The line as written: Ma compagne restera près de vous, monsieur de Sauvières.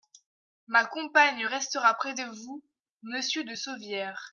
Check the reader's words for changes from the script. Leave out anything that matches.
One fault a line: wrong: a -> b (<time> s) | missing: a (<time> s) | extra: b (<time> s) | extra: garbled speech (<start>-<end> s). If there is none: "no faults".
no faults